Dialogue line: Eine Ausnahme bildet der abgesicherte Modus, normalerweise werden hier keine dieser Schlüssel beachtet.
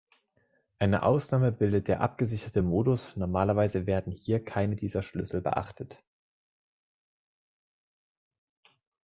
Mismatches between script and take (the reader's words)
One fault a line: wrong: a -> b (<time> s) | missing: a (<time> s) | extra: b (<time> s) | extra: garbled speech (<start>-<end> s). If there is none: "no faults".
no faults